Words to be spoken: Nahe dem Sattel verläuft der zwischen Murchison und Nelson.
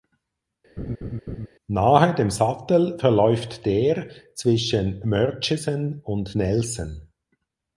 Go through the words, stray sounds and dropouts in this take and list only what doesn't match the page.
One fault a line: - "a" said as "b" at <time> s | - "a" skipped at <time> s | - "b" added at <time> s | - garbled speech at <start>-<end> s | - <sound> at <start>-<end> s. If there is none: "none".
- laugh at 0.8-1.5 s